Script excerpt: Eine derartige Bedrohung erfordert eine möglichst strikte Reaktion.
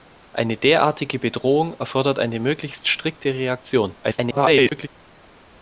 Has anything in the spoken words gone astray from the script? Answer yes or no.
yes